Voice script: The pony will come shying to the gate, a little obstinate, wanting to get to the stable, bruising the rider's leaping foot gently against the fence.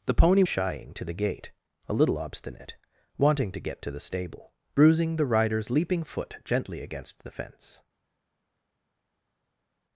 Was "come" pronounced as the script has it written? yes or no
no